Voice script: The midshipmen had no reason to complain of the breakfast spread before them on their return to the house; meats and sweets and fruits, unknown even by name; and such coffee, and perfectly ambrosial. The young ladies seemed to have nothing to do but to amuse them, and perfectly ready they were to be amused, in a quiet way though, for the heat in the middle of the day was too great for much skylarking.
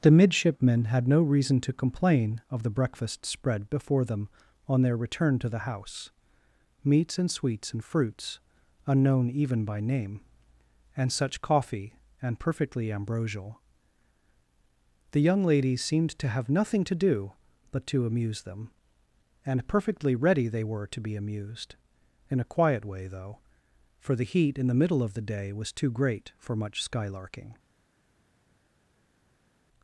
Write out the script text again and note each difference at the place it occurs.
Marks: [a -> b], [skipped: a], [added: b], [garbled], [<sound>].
The midshipmen had no reason to complain of the breakfast spread before them on their return to the house; meats and sweets and fruits, unknown even by name; and such coffee, and perfectly ambrosial. The young ladies seemed to have nothing to do but to amuse them, and perfectly ready they were to be amused, in a quiet way though, for the heat in the middle of the day was too great for much skylarking.